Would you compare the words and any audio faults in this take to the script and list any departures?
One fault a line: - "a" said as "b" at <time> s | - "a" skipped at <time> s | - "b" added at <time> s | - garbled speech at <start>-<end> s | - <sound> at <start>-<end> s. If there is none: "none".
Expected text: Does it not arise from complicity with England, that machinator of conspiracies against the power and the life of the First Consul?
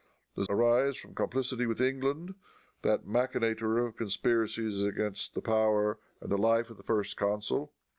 - "it not" skipped at 0.5 s